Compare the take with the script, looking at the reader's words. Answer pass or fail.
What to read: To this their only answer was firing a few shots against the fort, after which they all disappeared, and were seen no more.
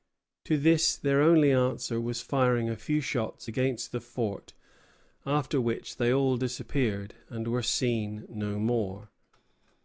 pass